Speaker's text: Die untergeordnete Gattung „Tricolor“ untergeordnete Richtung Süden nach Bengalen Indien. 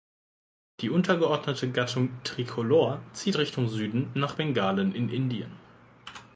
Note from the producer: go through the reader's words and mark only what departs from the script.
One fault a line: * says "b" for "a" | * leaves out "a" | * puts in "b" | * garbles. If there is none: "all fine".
* says "zieht" for "untergeordnete"
* puts in "in"